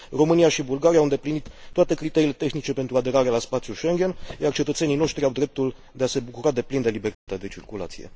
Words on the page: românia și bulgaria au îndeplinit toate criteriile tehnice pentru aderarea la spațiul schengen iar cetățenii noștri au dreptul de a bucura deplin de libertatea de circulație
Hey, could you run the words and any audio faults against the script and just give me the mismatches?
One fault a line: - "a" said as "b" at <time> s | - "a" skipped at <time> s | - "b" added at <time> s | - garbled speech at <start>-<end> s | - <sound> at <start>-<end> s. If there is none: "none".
- "se" added at 6.1 s
- dropout at 7.1-7.3 s